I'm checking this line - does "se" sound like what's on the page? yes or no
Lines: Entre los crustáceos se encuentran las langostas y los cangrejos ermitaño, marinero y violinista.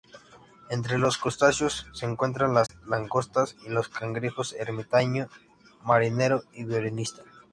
yes